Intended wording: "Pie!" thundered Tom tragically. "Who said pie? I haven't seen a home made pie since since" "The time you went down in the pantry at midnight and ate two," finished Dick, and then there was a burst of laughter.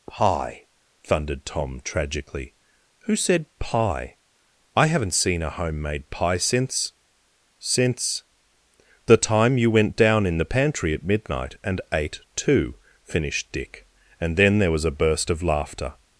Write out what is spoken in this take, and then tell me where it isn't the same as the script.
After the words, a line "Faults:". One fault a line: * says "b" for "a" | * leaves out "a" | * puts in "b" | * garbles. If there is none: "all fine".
"Pie!" thundered Tom tragically. "Who said pie? I haven't seen a home made pie since since" "The time you went down in the pantry at midnight and ate two," finished Dick, and then there was a burst of laughter.
Faults:
all fine